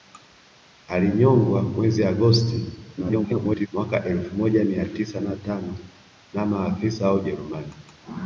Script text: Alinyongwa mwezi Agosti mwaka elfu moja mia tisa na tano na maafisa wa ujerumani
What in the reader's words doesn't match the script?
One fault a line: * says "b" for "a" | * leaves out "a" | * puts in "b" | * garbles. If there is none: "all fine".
* garbles